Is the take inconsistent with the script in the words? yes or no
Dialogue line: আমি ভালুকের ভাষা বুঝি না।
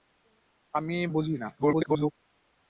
yes